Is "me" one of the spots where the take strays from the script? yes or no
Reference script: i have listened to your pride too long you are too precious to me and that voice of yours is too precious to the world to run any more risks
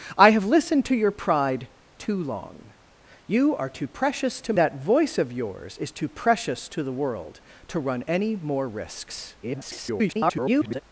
yes